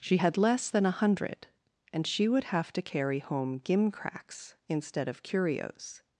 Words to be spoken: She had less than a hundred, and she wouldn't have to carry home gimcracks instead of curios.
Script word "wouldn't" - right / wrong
wrong